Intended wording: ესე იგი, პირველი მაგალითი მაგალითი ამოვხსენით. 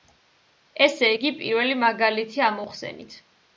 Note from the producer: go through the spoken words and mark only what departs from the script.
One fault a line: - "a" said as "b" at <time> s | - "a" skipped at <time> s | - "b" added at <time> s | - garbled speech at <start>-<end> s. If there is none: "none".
- "მაგალითი" skipped at 2.5 s